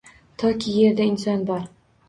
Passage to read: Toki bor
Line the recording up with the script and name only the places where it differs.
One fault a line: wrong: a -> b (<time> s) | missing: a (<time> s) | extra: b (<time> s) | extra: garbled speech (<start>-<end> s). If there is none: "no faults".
extra: yerda inson (0.8 s)